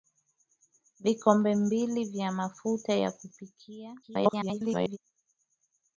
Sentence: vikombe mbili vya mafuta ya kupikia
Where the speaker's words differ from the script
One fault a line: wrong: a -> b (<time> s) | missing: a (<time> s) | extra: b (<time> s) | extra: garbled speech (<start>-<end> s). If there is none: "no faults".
extra: garbled speech (4.0-5.0 s)